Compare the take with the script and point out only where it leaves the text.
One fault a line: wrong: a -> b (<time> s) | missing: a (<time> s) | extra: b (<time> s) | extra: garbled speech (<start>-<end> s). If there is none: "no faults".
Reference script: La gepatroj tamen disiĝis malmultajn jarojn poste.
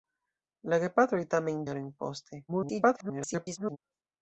missing: disiĝis malmultajn (1.6 s)
extra: garbled speech (2.5-3.8 s)